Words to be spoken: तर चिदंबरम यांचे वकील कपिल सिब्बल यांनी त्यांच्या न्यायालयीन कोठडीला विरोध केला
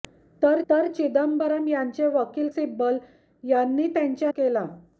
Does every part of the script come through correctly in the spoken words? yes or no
no